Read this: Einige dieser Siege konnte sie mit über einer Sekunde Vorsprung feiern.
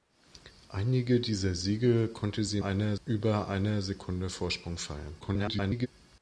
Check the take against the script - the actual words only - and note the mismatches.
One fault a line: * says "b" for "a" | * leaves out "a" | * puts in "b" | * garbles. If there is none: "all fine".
* says "einer" for "mit"
* garbles